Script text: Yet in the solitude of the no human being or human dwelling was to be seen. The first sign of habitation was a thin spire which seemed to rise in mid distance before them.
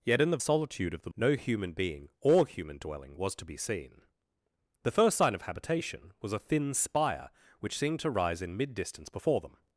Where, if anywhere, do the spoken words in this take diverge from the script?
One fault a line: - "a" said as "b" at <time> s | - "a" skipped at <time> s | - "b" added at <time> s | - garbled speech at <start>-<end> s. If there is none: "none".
none